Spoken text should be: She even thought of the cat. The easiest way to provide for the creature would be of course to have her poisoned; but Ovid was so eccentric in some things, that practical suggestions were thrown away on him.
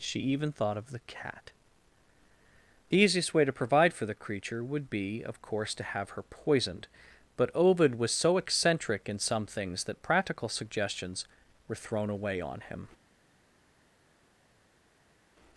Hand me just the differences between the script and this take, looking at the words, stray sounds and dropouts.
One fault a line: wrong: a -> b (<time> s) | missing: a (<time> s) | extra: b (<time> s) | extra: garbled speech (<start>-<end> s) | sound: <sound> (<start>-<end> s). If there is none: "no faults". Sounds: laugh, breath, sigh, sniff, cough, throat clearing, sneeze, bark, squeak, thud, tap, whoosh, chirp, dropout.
no faults